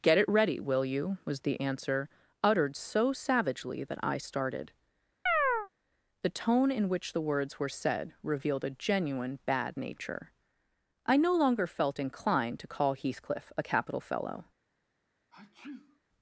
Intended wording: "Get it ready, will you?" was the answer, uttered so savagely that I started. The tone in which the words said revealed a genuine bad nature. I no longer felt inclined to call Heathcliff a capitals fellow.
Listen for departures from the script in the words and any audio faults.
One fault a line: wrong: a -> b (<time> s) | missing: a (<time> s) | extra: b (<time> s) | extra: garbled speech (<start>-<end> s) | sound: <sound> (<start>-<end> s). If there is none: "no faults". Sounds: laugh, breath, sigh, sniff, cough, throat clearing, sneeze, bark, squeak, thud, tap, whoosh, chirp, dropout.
sound: chirp (5.3-5.7 s)
extra: were (7.6 s)
wrong: capitals -> capital (13.6 s)
sound: sneeze (15.3-16.0 s)